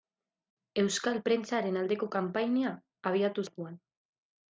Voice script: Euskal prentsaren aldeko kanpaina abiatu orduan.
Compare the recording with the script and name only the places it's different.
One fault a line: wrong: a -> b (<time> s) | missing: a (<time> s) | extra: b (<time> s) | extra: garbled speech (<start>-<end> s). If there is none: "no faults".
no faults